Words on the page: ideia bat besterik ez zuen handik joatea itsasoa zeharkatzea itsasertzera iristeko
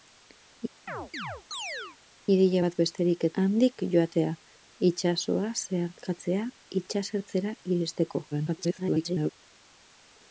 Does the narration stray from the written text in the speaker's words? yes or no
yes